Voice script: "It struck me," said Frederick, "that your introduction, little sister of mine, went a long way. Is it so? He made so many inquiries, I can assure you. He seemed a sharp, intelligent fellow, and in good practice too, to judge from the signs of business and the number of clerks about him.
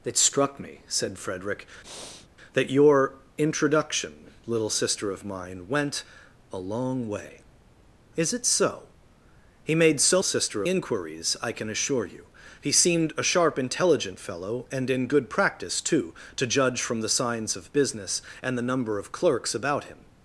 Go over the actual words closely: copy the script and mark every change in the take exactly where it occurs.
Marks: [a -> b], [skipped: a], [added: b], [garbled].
"It struck me," said Frederick, "that your introduction, little sister of mine, went a long way. Is it so? He made so [many -> sister] inquiries, I can assure you. He seemed a sharp, intelligent fellow, and in good practice too, to judge from the signs of business and the number of clerks about him.